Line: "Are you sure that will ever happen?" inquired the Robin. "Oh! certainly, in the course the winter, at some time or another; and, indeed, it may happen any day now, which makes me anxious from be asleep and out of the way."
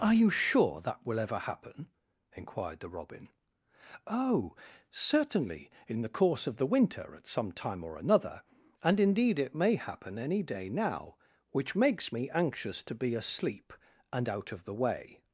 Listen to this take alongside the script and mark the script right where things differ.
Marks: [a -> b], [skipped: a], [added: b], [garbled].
"Are you sure that will ever happen?" inquired the Robin. "Oh! certainly, in the course [added: of] the winter, at some time or another; and, indeed, it may happen any day now, which makes me anxious [from -> to] be asleep and out of the way."